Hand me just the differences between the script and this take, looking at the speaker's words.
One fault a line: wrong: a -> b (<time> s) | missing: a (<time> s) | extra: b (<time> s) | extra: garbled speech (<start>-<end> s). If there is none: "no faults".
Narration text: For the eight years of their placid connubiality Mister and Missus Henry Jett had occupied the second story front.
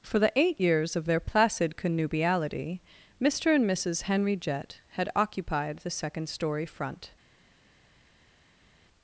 no faults